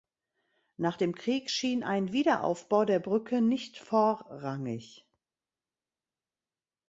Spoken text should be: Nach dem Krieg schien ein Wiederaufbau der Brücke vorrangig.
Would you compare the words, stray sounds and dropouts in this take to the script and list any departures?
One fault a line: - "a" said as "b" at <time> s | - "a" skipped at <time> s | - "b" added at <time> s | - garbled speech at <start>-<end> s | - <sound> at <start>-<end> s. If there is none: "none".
- "nicht" added at 3.4 s